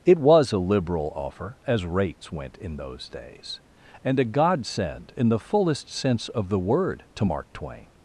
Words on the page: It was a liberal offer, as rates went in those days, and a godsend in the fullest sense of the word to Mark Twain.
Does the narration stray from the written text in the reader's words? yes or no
no